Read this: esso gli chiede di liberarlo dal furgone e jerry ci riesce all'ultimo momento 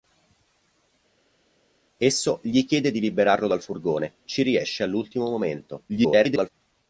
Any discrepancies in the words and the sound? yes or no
yes